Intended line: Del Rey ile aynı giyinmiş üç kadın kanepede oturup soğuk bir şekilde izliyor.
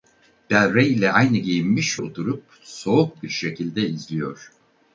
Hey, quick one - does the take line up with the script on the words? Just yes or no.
no